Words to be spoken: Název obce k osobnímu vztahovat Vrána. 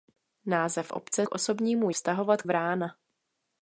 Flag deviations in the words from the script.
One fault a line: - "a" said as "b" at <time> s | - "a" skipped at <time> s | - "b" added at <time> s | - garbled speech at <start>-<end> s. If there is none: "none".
none